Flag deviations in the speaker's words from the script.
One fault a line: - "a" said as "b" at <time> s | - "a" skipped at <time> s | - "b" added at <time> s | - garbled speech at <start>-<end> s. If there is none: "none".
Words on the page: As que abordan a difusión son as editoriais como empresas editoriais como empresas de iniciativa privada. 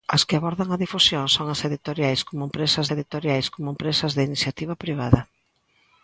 none